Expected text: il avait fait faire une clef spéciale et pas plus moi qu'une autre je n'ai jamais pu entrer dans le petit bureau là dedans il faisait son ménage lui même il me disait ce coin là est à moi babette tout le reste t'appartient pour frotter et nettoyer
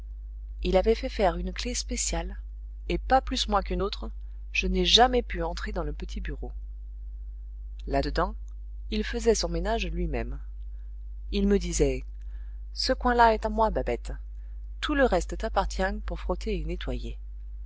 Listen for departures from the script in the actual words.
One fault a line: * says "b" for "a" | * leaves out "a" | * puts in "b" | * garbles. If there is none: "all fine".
all fine